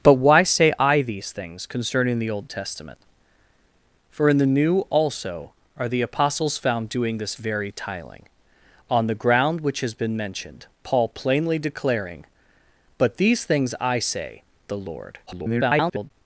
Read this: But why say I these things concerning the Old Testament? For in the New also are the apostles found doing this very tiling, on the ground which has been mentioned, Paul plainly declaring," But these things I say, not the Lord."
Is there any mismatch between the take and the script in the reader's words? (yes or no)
yes